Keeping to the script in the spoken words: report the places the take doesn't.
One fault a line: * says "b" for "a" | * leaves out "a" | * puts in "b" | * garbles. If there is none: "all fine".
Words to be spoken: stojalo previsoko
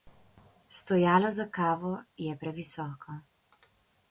* puts in "za kavo je"